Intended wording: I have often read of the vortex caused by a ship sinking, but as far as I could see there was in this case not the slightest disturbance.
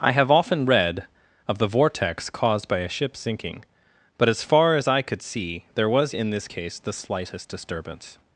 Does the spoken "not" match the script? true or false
false